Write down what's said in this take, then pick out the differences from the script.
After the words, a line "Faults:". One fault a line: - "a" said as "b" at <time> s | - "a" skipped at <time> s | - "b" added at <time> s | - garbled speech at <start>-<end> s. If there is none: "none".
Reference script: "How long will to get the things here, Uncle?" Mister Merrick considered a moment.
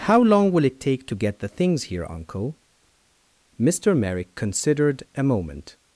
"How long will it take to get the things here, Uncle?" Mister Merrick considered a moment.
Faults:
- "it take" added at 0.7 s